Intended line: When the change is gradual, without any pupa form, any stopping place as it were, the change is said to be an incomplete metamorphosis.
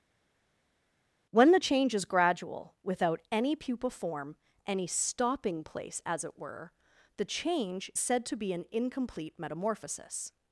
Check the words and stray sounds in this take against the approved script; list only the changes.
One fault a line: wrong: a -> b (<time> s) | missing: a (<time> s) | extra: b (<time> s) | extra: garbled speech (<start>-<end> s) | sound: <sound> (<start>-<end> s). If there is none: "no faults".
missing: is (7.9 s)